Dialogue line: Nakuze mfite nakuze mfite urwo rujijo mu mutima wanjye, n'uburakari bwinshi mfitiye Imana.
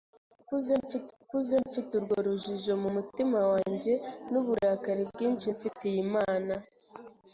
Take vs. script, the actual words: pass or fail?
pass